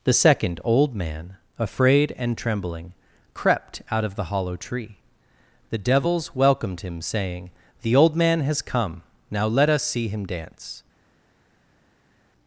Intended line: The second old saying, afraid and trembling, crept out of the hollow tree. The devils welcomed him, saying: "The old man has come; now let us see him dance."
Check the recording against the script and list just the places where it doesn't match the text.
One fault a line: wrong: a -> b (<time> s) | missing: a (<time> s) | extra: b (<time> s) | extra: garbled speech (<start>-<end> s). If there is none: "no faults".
wrong: saying -> man (0.9 s)